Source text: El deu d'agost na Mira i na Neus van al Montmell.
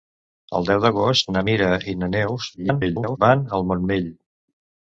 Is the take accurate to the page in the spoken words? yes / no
no